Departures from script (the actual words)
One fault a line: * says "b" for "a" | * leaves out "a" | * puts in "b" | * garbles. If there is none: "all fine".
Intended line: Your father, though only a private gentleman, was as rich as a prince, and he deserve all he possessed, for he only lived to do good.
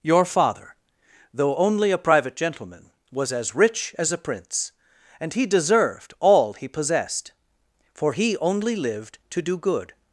* says "deserved" for "deserve"